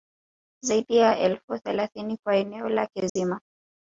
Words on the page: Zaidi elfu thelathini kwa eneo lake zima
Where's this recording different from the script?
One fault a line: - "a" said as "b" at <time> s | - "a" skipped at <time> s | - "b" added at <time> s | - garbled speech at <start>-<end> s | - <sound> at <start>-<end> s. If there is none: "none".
- "ya" added at 1.0 s
- dropout at 3.1-3.2 s